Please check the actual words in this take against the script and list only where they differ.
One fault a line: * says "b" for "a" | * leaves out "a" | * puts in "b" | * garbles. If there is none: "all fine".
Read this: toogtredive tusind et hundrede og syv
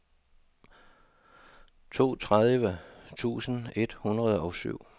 all fine